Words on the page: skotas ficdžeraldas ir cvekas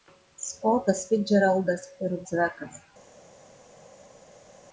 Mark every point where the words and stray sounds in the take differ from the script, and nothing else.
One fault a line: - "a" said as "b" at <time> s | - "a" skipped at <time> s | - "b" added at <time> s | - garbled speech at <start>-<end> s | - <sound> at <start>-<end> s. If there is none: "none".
none